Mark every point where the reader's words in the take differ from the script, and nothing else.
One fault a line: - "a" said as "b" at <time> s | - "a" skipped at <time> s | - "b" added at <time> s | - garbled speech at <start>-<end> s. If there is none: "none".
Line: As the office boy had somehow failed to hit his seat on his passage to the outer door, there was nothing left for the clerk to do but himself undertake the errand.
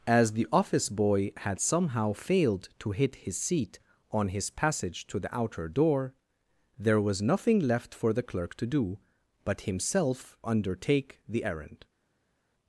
none